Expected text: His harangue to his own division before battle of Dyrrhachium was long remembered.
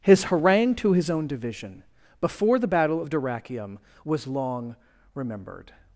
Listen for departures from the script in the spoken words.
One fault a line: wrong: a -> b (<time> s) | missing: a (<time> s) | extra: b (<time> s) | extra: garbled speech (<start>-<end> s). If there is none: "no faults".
extra: the (2.6 s)